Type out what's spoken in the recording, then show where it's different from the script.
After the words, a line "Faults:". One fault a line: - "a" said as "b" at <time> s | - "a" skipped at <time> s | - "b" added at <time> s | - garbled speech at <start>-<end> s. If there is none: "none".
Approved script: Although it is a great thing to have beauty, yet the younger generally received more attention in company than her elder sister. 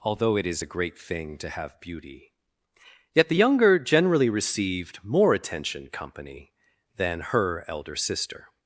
Although it is a great thing to have beauty, yet the younger generally received more attention company than her elder sister.
Faults:
- "in" skipped at 5.9 s